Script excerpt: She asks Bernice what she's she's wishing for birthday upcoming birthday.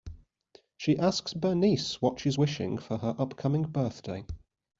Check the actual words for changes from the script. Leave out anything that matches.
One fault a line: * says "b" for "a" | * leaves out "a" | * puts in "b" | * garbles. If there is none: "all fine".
* leaves out "she's"
* says "her" for "birthday"